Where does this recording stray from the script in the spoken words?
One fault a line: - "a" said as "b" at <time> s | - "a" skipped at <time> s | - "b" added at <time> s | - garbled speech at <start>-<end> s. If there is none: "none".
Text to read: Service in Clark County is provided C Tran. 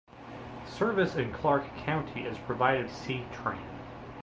none